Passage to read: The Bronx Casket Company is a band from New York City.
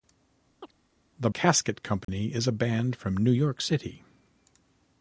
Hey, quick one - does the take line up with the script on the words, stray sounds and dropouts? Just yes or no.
no